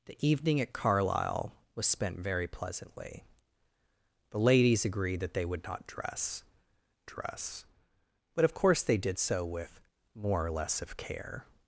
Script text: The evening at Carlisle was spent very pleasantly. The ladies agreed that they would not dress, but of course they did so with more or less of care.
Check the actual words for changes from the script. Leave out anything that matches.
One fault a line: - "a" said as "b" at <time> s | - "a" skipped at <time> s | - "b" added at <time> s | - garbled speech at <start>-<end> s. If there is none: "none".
- "dress" added at 7.0 s